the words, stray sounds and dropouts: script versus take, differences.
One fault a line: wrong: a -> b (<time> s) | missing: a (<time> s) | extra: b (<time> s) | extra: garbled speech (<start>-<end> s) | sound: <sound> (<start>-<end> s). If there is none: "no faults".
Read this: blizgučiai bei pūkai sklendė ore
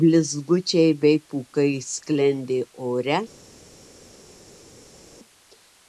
no faults